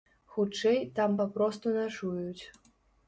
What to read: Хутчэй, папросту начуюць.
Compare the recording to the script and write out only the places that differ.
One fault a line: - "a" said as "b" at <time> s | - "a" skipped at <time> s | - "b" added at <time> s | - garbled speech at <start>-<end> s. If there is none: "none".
- "там" added at 1.0 s